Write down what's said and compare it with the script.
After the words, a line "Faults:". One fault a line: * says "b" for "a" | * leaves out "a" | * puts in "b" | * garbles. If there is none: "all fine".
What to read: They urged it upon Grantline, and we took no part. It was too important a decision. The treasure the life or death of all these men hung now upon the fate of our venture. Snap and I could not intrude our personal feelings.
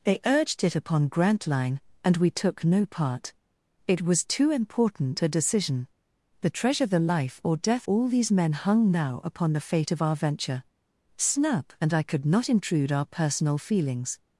They urged it upon Grantline, and we took no part. It was too important a decision. The treasure the life or death all these men hung now upon the fate of our venture. Snap and I could not intrude our personal feelings.
Faults:
* leaves out "of"